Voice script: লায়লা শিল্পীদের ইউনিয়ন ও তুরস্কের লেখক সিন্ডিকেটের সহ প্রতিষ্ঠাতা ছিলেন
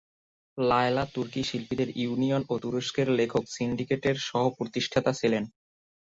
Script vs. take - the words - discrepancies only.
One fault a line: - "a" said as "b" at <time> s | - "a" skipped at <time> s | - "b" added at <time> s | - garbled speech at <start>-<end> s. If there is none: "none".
- "তুর্কি" added at 1.1 s